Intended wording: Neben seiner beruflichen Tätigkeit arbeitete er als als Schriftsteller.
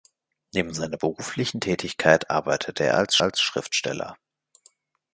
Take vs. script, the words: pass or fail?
pass